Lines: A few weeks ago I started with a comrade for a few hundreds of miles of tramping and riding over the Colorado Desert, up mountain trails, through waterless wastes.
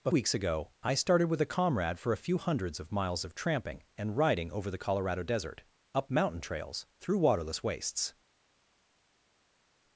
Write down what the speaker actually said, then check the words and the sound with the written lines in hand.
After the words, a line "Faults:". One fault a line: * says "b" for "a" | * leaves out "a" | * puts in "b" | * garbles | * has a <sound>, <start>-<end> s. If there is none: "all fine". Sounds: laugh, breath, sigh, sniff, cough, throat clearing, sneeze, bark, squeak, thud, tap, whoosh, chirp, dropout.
A weeks ago I started with a comrade for a few hundreds of miles of tramping and riding over the Colorado Desert, up mountain trails, through waterless wastes.
Faults:
* leaves out "few"